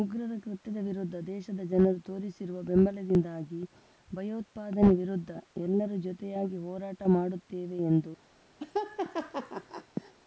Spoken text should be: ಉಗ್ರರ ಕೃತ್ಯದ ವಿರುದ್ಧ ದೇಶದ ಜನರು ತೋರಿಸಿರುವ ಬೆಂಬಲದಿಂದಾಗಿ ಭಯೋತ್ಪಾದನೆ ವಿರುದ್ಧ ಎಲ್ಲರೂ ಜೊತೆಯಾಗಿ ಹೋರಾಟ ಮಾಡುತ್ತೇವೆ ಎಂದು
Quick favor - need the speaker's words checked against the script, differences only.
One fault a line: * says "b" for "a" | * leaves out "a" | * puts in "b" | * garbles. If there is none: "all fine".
all fine